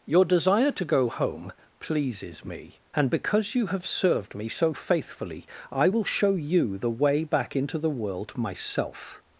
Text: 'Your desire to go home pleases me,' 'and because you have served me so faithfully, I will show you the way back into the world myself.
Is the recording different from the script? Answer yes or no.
no